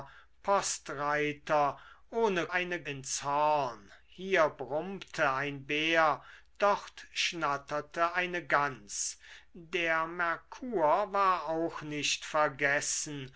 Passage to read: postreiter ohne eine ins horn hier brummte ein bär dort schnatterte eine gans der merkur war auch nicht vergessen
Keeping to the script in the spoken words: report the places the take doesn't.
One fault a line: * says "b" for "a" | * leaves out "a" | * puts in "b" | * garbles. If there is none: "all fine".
all fine